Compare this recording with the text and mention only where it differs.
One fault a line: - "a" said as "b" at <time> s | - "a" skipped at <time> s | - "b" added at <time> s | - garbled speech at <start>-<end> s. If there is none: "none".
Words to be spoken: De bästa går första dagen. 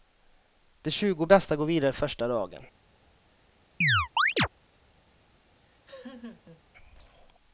- "tjugo" added at 0.9 s
- "vidare" added at 1.7 s